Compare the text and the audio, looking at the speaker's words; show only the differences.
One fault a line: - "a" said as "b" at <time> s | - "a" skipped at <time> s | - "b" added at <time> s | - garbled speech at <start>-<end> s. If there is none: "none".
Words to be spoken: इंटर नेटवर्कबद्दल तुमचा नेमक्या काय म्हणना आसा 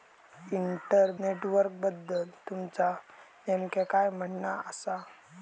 none